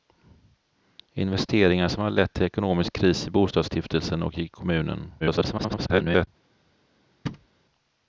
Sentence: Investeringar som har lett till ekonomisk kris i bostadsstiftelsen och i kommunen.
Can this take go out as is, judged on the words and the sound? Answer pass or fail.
fail